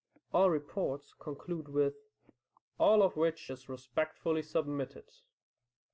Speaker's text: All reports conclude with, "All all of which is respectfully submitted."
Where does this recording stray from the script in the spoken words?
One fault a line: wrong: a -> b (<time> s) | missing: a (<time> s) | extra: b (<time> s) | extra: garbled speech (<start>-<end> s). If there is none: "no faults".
missing: all (3.0 s)